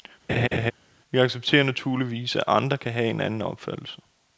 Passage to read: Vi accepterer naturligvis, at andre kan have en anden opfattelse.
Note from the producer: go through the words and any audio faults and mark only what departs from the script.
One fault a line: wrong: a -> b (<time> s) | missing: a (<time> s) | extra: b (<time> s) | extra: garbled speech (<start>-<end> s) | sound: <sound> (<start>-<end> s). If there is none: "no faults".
sound: laugh (0.3-0.7 s)